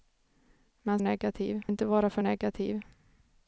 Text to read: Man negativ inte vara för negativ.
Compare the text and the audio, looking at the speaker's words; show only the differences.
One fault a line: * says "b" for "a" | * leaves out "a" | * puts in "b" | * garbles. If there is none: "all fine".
all fine